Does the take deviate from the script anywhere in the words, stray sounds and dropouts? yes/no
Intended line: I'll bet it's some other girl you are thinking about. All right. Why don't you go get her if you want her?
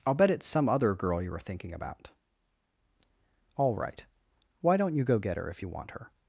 yes